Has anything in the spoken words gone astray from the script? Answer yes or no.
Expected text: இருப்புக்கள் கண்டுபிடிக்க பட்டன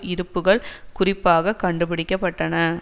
yes